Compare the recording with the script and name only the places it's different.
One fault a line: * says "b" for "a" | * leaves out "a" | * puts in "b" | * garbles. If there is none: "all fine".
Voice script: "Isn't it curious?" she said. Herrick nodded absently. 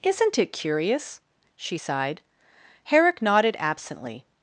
* says "sighed" for "said"